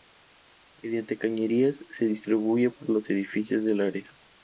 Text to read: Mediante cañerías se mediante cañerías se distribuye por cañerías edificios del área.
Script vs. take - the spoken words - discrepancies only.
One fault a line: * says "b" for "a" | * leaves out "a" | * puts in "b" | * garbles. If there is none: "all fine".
* leaves out "mediante cañerías se"
* says "los" for "cañerías"